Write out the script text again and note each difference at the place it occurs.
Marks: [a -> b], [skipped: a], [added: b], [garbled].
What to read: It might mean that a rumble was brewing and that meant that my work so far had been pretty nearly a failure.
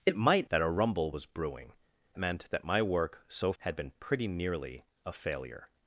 It might [skipped: mean] that a rumble was brewing [skipped: and that] meant that my work so [skipped: far] had been pretty nearly a failure.